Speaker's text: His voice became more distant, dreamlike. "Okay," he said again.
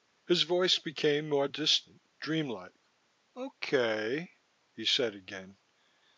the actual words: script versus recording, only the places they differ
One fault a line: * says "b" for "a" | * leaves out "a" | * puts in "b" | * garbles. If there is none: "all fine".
all fine